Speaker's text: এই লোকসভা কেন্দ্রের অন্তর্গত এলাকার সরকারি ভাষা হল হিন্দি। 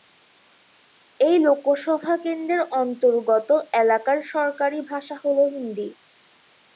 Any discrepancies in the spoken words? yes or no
no